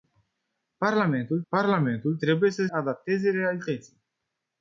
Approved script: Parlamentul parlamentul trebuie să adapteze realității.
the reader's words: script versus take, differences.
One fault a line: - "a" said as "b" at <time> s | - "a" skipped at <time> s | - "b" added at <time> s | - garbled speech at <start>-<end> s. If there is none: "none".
none